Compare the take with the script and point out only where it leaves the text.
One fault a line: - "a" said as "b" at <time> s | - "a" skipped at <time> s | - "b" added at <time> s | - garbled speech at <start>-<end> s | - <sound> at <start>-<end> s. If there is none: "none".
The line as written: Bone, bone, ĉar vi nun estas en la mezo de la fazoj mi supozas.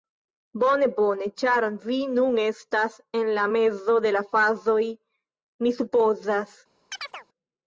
- chirp at 6.9-7.3 s